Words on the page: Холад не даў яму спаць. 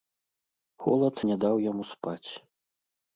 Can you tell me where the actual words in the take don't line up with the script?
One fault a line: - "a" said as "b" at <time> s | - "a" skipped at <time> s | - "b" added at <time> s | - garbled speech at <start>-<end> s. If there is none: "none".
none